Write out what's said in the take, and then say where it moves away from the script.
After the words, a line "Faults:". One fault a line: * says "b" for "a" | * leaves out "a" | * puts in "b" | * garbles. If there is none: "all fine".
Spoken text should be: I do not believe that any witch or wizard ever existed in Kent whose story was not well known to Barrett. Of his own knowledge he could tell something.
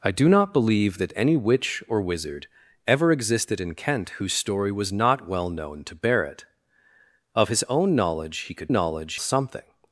I do not believe that any witch or wizard ever existed in Kent whose story was not well known to Barrett. Of his own knowledge he could knowledge something.
Faults:
* says "knowledge" for "tell"